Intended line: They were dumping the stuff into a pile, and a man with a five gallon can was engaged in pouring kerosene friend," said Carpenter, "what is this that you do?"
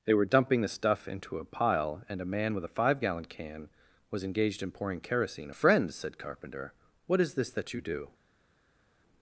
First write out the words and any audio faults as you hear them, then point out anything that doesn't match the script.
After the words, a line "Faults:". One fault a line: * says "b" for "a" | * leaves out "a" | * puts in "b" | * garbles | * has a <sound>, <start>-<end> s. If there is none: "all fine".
They were dumping the stuff into a pile, and a man with a five gallon can was engaged in pouring kerosene friend," said Carpenter, "what is this that you do?"
Faults:
all fine